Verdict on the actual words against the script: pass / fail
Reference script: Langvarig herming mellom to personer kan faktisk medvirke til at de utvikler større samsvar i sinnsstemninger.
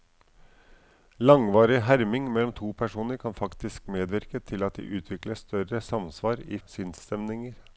pass